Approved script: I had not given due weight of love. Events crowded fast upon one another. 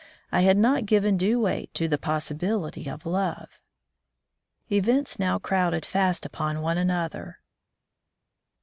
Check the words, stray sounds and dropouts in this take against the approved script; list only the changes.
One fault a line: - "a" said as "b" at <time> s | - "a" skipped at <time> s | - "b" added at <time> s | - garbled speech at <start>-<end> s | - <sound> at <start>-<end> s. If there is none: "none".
- "to the possibility" added at 1.8 s
- "now" added at 5.2 s